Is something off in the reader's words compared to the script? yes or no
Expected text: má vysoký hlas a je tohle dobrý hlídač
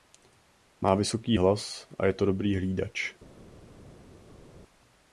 yes